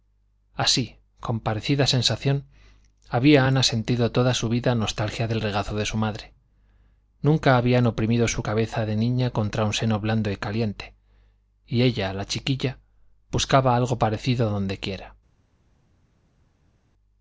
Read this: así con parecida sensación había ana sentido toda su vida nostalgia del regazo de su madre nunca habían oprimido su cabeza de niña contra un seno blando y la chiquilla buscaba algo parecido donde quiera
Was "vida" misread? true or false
false